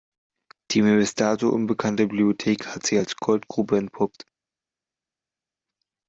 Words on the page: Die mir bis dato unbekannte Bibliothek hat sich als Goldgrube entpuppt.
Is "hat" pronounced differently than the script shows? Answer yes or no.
no